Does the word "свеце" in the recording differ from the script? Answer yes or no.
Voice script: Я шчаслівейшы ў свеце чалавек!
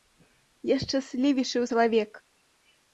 yes